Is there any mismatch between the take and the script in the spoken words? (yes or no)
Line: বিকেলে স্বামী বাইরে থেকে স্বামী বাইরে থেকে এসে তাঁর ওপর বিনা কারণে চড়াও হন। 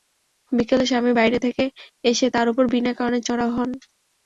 yes